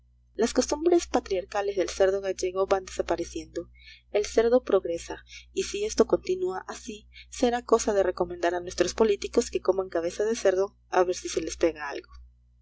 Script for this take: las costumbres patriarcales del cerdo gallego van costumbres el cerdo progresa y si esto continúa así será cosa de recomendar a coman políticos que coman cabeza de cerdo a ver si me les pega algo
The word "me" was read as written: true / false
false